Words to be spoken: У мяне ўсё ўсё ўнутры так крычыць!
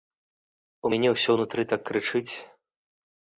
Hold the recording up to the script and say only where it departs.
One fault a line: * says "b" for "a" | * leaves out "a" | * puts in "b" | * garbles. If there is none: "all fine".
* leaves out "ўсё"